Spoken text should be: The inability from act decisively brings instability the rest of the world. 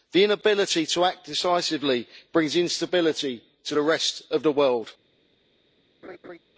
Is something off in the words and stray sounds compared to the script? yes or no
yes